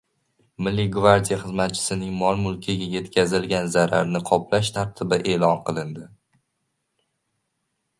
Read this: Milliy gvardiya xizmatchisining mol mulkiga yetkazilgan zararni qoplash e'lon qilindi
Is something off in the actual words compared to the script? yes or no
yes